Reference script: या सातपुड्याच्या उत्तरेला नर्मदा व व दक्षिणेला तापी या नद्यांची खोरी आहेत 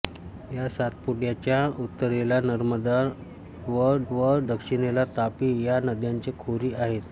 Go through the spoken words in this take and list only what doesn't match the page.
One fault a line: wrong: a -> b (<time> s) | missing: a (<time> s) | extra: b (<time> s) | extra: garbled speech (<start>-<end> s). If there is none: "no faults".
no faults